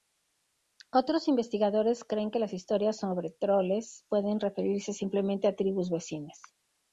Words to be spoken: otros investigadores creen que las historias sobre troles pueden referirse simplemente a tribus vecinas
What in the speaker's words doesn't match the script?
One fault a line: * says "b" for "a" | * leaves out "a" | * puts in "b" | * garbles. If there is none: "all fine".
all fine